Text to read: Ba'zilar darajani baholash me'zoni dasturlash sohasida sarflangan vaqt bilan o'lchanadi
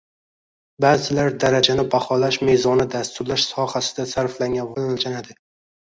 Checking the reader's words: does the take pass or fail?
fail